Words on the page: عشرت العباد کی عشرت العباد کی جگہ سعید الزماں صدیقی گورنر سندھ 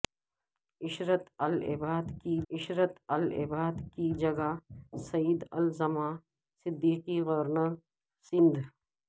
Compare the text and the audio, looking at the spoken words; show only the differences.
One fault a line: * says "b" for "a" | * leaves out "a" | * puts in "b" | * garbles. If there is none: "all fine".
all fine